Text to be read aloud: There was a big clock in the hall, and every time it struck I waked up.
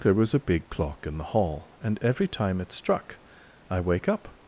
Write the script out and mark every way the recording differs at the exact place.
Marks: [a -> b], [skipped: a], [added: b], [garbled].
There was a big clock in the hall, and every time it struck I [waked -> wake] up.